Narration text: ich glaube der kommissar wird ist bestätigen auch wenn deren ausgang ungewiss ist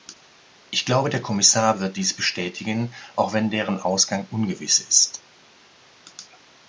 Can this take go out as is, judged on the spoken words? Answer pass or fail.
fail